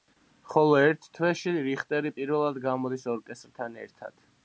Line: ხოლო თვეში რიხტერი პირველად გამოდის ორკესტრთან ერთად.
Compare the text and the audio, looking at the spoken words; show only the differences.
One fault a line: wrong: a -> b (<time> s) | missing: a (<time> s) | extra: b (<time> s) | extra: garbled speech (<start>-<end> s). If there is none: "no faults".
extra: ერთ (0.8 s)